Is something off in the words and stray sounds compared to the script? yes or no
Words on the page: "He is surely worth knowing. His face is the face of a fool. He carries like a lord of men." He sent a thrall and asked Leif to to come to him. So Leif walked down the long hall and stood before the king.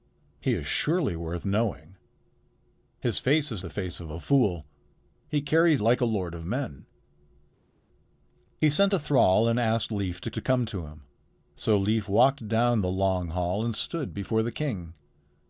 no